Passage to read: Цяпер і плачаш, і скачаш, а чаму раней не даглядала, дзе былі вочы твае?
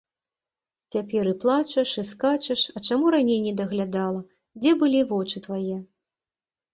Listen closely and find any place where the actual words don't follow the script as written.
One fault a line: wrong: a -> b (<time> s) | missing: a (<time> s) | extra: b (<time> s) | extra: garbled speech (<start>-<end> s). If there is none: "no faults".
no faults